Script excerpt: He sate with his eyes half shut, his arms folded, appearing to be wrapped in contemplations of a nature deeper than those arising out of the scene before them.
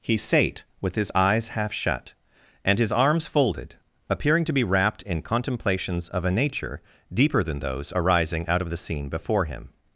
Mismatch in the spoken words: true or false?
true